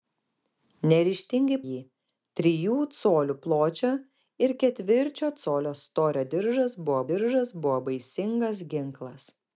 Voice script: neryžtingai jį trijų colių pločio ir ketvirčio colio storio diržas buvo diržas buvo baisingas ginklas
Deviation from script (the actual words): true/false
false